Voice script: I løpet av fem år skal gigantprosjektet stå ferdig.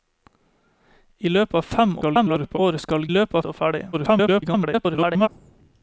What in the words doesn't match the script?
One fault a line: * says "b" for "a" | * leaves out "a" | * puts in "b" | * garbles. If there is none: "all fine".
* garbles
* says "løpet" for "gigantprosjektet"
* garbles